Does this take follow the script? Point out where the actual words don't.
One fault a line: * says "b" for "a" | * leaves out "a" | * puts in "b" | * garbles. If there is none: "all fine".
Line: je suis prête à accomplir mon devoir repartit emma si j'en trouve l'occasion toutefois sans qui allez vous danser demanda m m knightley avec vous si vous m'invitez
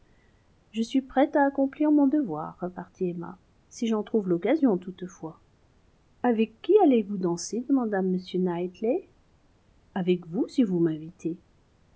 * says "avec" for "sans"
* leaves out "m"